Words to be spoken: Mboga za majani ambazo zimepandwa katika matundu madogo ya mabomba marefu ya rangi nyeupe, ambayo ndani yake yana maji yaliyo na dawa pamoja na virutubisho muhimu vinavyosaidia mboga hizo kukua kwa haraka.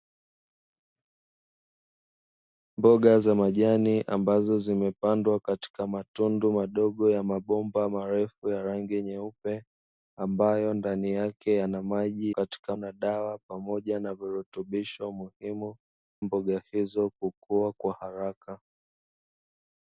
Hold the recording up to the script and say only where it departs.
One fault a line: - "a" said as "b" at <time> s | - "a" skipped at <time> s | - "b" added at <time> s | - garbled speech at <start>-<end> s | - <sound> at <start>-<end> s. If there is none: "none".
- "yaliyo" said as "katika" at 12.3 s
- "vinavyosaidia" skipped at 15.8 s